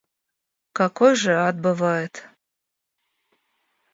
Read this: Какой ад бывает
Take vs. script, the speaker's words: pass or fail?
fail